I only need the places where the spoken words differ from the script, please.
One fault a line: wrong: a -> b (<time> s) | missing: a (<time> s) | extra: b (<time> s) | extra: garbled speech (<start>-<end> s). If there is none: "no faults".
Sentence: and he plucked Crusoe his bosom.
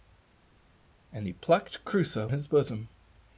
no faults